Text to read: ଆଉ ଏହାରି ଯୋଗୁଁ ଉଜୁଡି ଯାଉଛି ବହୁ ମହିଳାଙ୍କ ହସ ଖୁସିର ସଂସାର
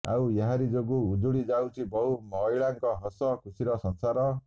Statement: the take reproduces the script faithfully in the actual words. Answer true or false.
true